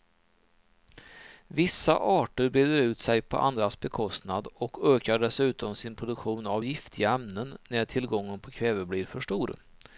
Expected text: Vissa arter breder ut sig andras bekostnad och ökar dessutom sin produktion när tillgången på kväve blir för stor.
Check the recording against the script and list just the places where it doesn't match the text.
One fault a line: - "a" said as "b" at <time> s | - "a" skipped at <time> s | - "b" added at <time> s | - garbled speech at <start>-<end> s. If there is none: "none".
- "på" added at 3.2 s
- "av giftiga ämnen" added at 6.5 s